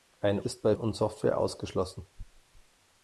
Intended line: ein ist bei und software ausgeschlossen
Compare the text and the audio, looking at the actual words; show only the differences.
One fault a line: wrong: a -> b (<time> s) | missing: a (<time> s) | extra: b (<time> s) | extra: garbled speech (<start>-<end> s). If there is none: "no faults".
no faults